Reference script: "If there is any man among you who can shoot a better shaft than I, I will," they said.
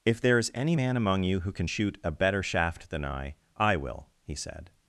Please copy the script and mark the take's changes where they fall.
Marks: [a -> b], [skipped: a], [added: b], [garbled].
"If there is any man among you who can shoot a better shaft than I, I will," [they -> he] said.